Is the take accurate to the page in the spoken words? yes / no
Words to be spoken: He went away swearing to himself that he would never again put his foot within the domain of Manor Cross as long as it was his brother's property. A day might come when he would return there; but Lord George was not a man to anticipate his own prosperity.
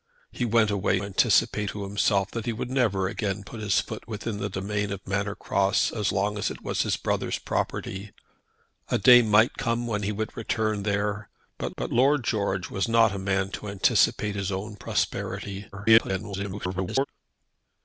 no